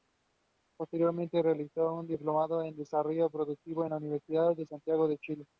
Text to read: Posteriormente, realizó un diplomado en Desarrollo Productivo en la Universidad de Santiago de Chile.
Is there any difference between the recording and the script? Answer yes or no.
no